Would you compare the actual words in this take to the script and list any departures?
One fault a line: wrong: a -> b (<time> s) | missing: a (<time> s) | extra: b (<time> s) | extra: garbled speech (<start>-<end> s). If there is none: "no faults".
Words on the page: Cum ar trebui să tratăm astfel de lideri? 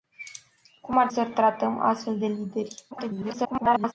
missing: trebui (1.1 s)
extra: garbled speech (2.9-3.9 s)